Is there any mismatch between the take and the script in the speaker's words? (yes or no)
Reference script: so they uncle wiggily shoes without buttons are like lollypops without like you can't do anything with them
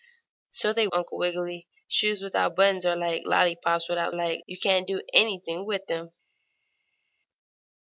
no